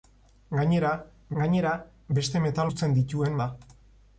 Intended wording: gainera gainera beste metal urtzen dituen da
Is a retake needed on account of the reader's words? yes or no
no